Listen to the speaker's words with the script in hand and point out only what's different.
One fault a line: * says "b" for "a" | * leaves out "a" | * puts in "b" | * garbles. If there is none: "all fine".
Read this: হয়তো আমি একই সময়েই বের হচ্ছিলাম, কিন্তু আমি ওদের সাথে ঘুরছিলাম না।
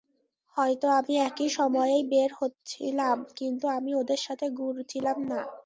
all fine